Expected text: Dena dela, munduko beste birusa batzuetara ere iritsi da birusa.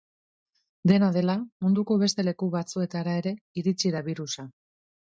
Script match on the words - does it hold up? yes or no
no